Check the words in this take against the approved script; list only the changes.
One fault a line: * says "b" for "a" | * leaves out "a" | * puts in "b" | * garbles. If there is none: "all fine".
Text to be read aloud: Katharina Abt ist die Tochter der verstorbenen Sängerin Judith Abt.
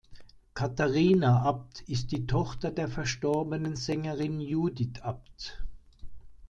all fine